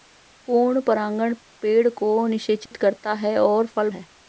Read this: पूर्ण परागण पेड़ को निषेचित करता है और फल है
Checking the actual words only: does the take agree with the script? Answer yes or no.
yes